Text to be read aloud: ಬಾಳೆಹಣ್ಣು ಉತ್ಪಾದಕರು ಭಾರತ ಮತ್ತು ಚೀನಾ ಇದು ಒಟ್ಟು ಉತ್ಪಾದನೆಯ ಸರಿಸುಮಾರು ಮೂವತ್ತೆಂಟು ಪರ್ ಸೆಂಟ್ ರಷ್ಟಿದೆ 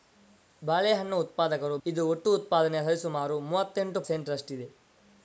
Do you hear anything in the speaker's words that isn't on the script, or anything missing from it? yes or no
yes